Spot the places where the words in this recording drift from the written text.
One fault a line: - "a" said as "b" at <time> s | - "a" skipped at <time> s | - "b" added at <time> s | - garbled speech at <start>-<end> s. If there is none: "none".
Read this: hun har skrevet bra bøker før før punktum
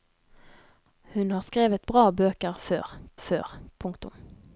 none